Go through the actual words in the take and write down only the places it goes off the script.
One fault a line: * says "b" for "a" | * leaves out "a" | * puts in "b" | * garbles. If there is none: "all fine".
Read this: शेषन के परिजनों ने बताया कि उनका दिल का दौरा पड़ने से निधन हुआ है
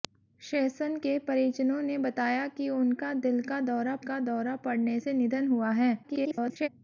* puts in "का दौरा"
* garbles